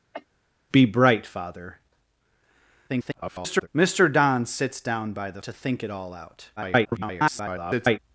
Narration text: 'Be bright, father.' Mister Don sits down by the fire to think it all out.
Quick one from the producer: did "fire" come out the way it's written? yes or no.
no